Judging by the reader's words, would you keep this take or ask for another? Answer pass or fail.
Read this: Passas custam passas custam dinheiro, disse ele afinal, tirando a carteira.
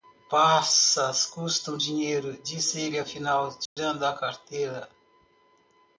fail